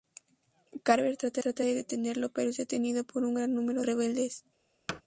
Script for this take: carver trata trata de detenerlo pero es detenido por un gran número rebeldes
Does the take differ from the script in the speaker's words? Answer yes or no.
no